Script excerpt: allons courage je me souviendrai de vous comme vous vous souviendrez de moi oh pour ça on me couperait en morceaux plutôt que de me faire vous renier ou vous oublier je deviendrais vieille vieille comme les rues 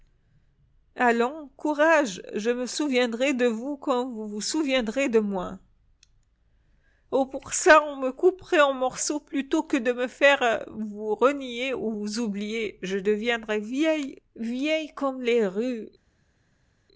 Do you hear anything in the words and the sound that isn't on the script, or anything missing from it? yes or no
no